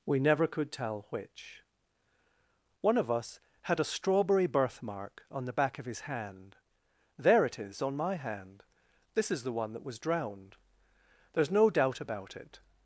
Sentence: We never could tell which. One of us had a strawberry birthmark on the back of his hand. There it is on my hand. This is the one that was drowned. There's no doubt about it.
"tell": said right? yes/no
yes